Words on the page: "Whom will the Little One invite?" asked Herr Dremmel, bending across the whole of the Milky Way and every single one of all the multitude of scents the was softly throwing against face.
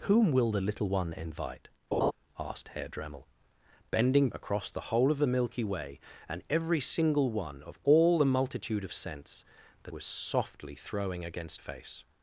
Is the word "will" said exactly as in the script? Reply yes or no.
yes